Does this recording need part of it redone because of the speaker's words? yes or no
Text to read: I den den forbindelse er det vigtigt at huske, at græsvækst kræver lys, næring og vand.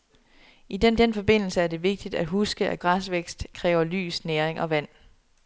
no